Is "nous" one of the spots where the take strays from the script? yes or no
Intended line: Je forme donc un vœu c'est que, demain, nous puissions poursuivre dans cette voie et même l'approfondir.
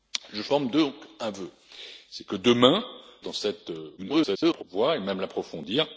yes